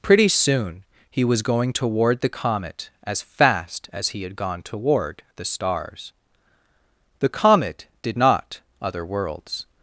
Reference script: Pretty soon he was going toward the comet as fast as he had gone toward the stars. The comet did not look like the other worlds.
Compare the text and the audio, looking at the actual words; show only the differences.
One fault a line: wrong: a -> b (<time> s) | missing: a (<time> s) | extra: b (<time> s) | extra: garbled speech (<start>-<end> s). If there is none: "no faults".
missing: look like the (8.6 s)